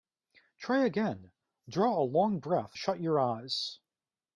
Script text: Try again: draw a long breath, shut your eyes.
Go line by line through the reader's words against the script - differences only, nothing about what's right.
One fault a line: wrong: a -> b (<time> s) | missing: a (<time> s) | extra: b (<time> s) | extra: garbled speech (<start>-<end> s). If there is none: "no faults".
no faults